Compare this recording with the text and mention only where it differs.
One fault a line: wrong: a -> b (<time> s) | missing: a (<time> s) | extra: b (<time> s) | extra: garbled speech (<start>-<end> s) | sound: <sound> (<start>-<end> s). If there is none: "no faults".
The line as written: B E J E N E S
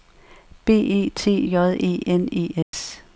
extra: T (1.1 s)
sound: dropout (2.6-2.7 s)